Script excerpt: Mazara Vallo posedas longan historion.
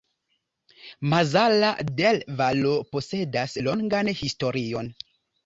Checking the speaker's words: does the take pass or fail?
fail